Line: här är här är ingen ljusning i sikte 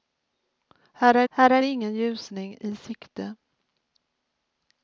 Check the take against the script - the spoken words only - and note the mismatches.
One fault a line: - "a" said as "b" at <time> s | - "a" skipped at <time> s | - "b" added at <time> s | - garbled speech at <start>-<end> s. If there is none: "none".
none